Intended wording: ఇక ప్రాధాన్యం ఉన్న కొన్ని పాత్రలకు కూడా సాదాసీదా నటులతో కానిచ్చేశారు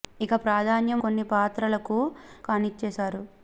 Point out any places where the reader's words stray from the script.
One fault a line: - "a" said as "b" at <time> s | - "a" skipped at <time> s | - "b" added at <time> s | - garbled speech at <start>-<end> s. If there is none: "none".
- "ఉన్న" skipped at 1.0 s
- "కూడా సాదాసీదా నటులతో" skipped at 2.0 s